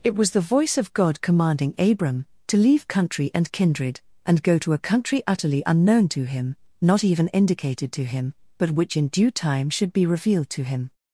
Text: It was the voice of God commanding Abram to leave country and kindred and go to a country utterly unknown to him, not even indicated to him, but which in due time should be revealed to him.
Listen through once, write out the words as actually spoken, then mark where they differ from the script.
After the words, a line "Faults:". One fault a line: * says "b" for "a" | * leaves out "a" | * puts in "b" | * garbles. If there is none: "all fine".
It was the voice of God commanding Abram to leave country and kindred and go to a country utterly unknown to him, not even indicated to him, but which in due time should be revealed to him.
Faults:
all fine